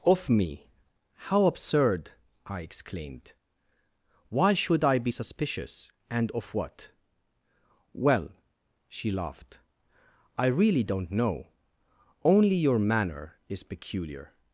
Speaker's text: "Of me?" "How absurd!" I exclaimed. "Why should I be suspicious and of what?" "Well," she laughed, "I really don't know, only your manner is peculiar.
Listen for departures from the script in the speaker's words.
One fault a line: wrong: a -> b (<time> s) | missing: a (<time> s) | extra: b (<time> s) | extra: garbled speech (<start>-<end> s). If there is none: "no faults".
no faults